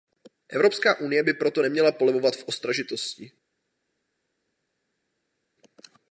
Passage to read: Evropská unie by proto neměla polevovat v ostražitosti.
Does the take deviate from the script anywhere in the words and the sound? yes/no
no